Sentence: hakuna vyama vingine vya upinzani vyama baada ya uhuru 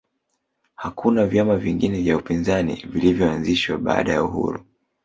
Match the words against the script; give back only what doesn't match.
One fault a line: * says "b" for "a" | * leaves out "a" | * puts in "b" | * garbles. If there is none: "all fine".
* says "vilivyoanzishwa" for "vyama"